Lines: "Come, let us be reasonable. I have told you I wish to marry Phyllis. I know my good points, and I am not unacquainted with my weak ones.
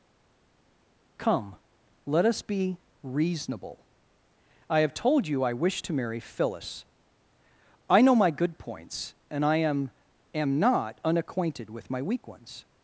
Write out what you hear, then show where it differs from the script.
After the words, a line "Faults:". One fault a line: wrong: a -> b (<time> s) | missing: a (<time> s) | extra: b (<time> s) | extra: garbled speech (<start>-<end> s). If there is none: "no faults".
"Come, let us be reasonable. I have told you I wish to marry Phyllis. I know my good points, and I am am not unacquainted with my weak ones.
Faults:
extra: am (10.3 s)